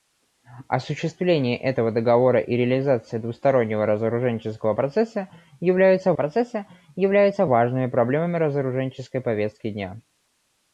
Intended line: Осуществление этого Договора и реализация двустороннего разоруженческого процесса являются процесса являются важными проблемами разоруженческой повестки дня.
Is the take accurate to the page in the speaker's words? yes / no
yes